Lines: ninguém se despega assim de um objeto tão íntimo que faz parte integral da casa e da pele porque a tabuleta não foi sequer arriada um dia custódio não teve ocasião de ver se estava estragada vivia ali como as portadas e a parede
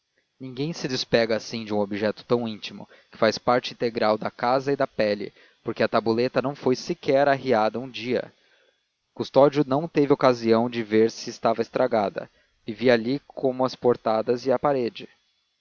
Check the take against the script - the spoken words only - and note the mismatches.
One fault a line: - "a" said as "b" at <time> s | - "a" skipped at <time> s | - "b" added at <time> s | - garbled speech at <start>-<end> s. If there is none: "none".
none